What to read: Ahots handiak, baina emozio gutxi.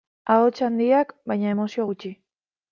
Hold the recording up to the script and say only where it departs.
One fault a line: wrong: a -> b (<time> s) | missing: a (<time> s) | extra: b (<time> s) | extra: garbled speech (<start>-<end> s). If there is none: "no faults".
no faults